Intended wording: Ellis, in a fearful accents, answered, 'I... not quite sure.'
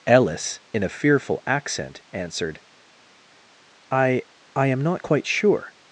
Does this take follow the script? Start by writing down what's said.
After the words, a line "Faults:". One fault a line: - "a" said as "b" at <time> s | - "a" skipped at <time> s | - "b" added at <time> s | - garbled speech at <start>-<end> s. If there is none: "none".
Ellis, in a fearful accent, answered, 'I... I am not quite sure.'
Faults:
- "accents" said as "accent" at 1.4 s
- "I am" added at 4.6 s